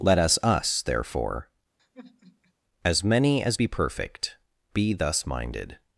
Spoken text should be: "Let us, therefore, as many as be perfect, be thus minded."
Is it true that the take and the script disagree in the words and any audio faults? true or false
true